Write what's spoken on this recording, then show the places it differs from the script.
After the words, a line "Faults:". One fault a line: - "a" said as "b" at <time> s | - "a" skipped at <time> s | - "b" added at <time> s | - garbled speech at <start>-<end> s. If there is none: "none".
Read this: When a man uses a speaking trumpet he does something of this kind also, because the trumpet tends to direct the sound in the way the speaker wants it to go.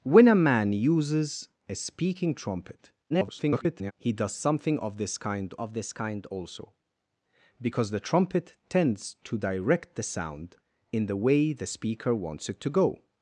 When a man uses a speaking trumpet [garbled] he does something of this kind of this kind also, because the trumpet tends to direct the sound in the way the speaker wants it to go.
Faults:
- garbled speech at 3.1-3.9 s
- "of this kind" added at 5.6 s